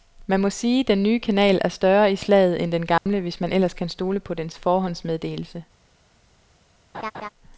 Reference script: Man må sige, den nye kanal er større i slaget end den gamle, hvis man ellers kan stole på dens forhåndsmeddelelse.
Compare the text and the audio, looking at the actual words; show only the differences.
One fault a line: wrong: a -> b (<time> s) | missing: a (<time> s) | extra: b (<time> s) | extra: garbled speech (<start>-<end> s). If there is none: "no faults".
no faults